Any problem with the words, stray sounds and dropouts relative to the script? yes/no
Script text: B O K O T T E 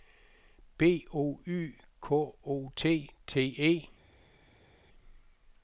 yes